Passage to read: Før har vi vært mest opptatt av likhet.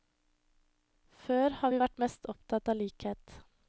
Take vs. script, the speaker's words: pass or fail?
pass